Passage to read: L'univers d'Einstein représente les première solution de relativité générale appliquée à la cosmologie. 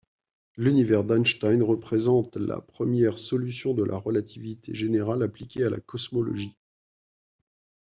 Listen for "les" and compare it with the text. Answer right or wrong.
wrong